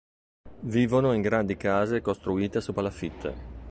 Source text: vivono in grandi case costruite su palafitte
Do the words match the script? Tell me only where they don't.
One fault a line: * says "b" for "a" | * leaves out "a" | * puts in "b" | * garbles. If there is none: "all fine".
all fine